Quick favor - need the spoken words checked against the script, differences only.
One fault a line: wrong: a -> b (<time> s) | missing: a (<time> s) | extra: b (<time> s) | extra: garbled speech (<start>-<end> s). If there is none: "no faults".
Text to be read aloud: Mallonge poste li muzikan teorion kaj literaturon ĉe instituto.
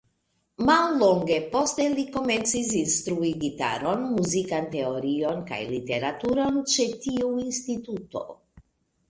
extra: komencis instrui gitaron (2.1 s)
extra: tiu (7.1 s)